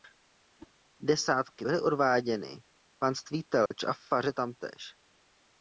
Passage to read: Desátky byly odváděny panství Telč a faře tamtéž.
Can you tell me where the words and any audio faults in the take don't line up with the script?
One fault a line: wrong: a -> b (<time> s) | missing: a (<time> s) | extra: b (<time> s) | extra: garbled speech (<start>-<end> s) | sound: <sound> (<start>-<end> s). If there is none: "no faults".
sound: whoosh (0.6-0.7 s)
sound: dropout (3.7-3.7 s)